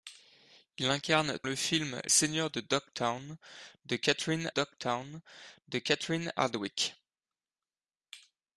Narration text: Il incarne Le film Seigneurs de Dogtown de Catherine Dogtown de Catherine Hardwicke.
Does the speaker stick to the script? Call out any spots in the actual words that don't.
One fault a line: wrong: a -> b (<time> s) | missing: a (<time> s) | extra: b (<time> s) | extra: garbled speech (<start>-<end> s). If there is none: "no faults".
no faults